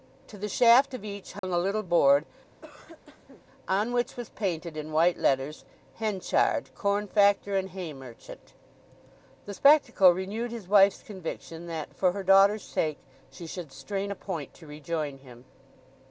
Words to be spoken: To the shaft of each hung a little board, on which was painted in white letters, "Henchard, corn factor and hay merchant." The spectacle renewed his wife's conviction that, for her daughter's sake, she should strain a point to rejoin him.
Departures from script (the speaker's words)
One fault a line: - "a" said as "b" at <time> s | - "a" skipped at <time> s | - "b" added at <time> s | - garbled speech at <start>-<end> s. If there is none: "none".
none